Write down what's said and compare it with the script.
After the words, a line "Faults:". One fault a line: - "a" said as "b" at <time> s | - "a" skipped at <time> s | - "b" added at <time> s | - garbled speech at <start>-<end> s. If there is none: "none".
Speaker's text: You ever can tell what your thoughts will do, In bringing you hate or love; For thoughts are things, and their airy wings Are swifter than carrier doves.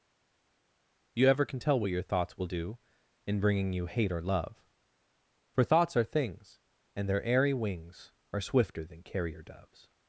You ever can tell what your thoughts will do, In bringing you hate or love; For thoughts are things, and their airy wings Are swifter than carrier doves.
Faults:
none